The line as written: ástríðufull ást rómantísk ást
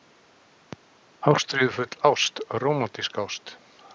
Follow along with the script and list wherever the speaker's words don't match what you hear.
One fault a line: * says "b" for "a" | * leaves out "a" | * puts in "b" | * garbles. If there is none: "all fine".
all fine